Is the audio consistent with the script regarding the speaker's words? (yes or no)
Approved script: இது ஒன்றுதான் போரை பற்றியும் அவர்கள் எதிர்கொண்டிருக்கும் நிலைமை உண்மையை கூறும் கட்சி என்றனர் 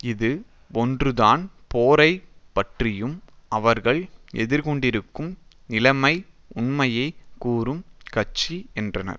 yes